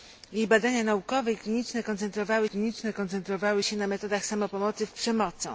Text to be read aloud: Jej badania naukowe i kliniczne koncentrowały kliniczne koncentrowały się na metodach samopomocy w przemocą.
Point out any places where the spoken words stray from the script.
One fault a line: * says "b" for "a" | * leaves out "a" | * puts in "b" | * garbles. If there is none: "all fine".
all fine